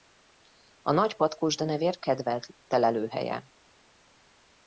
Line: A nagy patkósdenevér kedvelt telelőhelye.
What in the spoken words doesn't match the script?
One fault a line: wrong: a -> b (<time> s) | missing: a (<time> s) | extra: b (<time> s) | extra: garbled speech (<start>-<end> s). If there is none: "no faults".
no faults